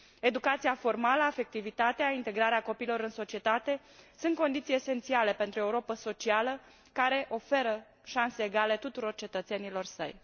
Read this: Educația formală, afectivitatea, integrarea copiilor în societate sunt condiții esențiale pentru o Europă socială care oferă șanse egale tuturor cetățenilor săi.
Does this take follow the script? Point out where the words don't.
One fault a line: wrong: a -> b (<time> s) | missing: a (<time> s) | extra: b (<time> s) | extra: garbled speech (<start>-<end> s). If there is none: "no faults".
no faults